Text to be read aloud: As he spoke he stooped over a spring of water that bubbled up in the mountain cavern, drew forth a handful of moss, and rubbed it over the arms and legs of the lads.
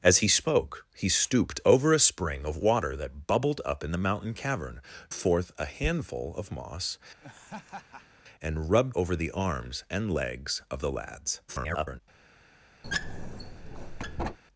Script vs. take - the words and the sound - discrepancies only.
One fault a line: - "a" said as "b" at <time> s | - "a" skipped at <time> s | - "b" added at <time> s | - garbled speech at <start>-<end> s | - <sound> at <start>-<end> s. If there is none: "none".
- "drew" skipped at 4.8 s
- laugh at 7.2-8.2 s
- "it" skipped at 9.0 s
- garbled speech at 11.5-12.0 s
- squeak at 12.8-14.4 s